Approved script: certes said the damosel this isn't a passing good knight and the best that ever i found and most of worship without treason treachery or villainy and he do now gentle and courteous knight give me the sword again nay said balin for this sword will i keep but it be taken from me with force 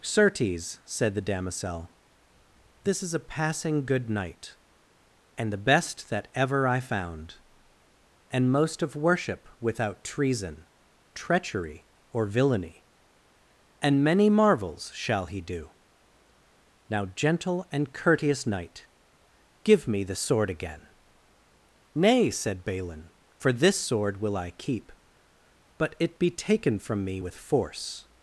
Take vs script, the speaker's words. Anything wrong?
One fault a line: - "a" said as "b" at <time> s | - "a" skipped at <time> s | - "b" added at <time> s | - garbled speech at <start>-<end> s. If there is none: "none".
- "isn't" said as "is" at 3.0 s
- "many marvels shall" added at 14.0 s